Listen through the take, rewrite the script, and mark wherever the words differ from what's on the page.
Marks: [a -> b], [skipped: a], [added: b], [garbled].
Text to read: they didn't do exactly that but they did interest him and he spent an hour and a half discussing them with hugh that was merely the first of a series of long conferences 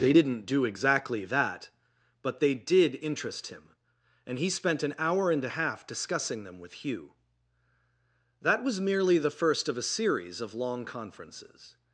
they didn't do exactly that but they did interest him and he spent an hour and a half discussing them with hugh that was merely the first of a series of long conferences